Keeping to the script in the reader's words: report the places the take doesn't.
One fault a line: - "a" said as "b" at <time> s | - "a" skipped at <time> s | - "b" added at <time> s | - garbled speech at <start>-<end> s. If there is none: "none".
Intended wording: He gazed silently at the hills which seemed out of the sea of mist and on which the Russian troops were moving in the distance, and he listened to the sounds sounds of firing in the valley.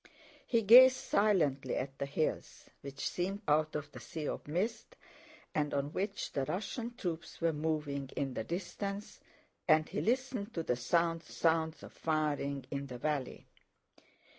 none